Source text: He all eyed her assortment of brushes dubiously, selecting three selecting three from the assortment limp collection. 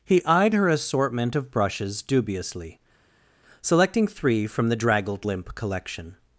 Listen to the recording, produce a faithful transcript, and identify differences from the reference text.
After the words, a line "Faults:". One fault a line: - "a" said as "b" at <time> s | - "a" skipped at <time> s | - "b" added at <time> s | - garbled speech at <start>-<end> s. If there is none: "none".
He eyed her assortment of brushes dubiously, selecting three from the draggled limp collection.
Faults:
- "all" skipped at 0.2 s
- "selecting three" skipped at 4.5 s
- "assortment" said as "draggled" at 4.8 s